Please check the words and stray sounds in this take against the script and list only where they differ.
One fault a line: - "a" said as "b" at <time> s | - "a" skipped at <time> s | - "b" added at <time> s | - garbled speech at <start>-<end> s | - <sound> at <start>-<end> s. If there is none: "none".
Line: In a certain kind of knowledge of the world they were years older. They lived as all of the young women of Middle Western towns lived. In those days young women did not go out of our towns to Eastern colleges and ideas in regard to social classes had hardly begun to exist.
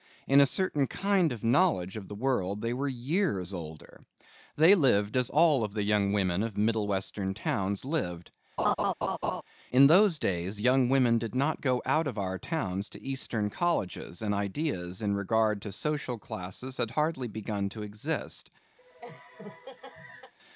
- laugh at 8.6-9.4 s
- laugh at 18.8-20.3 s